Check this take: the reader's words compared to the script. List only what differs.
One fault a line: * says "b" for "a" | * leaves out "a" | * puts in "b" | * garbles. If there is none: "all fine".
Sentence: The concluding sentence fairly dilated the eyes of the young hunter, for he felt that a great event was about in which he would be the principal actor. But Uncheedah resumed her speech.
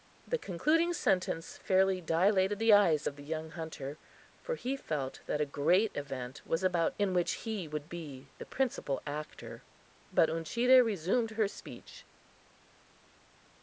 all fine